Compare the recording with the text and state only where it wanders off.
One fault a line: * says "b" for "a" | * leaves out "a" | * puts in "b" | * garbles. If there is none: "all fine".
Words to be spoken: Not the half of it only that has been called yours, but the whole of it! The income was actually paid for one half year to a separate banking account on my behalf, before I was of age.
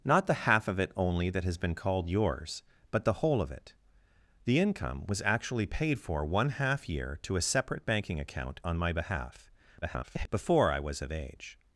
* garbles